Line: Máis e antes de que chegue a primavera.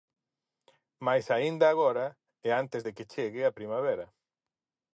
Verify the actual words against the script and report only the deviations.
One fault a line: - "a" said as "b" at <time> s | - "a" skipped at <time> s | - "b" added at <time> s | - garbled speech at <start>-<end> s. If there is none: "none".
- "aínda agora" added at 1.4 s